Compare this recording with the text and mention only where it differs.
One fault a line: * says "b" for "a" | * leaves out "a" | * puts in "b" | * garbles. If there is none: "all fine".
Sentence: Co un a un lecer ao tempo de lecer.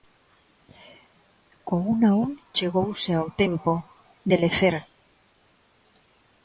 * says "chegouse" for "lecer"